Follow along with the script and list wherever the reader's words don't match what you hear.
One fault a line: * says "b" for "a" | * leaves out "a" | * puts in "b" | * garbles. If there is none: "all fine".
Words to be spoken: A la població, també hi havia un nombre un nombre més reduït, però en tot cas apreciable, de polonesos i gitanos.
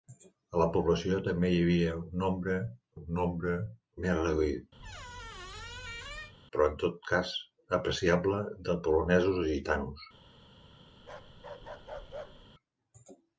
all fine